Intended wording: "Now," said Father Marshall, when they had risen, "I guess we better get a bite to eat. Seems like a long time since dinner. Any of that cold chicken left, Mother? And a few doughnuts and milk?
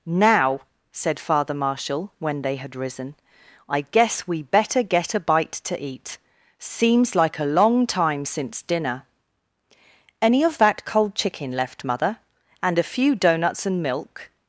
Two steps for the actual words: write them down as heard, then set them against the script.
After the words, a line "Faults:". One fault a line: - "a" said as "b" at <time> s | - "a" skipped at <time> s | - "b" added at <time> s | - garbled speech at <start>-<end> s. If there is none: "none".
"Now," said Father Marshall, when they had risen, "I guess we better get a bite to eat. Seems like a long time since dinner. Any of that cold chicken left, Mother? And a few doughnuts and milk?
Faults:
none